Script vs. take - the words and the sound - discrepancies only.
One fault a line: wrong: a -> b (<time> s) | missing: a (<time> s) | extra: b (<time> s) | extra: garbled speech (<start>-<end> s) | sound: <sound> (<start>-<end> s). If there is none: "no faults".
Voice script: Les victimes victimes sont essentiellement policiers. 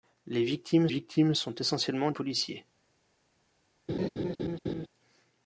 sound: laugh (3.9-4.9 s)